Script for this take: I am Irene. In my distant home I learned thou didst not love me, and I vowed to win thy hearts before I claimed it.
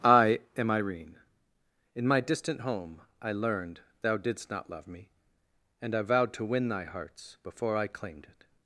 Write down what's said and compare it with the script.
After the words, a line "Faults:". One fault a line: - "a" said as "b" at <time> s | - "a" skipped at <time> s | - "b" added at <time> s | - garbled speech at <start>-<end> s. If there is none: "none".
I am Irene. In my distant home I learned thou didst not love me, and I vowed to win thy hearts before I claimed it.
Faults:
none